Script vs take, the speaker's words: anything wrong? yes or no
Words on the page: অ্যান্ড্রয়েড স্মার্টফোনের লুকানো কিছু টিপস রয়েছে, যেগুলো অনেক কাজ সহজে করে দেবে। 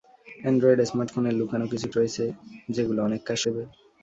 yes